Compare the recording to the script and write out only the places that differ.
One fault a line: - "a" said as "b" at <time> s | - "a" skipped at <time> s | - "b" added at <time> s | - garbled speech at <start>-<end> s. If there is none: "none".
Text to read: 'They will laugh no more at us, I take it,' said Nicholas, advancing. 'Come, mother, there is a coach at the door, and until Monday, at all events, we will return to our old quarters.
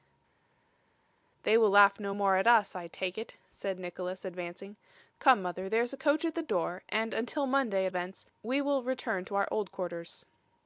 - "all" skipped at 7.9 s